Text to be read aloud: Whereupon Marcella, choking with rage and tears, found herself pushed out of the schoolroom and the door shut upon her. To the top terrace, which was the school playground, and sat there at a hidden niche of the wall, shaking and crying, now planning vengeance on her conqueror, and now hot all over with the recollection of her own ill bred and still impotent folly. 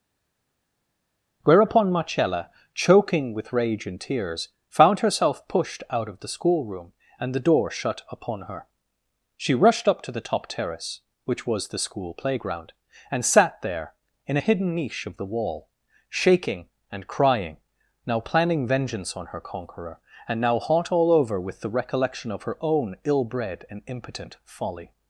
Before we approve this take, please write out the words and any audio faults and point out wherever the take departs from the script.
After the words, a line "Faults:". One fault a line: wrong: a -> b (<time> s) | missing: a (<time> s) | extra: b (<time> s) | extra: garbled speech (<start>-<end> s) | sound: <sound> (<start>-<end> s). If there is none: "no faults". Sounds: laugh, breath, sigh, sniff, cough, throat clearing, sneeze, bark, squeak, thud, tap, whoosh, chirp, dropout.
Whereupon Marcella, choking with rage and tears, found herself pushed out of the schoolroom and the door shut upon her. She rushed up to the top terrace, which was the school playground, and sat there in a hidden niche of the wall, shaking and crying, now planning vengeance on her conqueror, and now hot all over with the recollection of her own ill bred and impotent folly.
Faults:
extra: She rushed up (9.4 s)
wrong: at -> in (14.3 s)
missing: still (23.8 s)